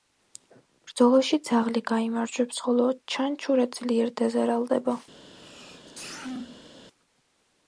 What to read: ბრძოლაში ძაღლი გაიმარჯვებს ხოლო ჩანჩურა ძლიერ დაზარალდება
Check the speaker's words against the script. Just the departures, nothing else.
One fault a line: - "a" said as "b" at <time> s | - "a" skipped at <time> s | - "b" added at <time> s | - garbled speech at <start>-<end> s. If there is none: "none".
none